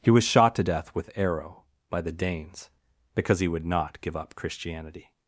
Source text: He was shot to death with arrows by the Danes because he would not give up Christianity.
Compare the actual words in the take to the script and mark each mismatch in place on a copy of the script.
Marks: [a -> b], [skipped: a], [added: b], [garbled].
He was shot to death with [arrows -> arrow] by the Danes because he would not give up Christianity.